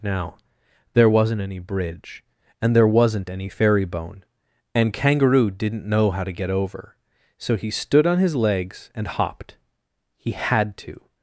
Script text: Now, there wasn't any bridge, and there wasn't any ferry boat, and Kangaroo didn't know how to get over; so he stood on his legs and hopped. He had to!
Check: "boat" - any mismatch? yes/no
yes